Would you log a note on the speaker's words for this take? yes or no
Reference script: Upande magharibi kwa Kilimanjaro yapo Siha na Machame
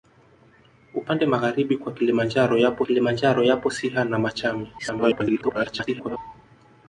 yes